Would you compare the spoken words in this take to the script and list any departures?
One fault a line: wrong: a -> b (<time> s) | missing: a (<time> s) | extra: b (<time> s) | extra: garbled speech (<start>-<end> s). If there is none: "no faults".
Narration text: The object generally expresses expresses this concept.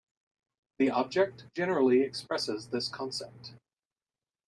missing: expresses (2.7 s)